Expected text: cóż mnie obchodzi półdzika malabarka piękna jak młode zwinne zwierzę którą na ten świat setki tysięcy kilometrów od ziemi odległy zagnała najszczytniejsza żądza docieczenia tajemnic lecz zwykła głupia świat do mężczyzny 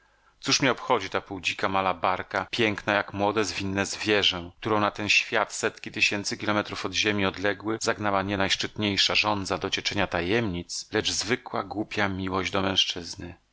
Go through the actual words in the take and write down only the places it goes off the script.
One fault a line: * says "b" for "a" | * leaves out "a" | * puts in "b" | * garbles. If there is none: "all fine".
* puts in "ta"
* puts in "nie"
* says "miłość" for "świat"